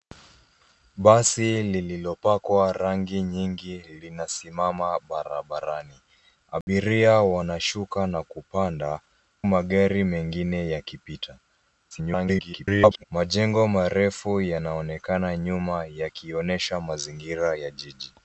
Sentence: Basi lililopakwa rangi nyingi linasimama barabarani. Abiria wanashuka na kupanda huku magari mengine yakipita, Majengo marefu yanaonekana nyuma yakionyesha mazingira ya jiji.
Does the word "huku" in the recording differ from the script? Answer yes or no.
yes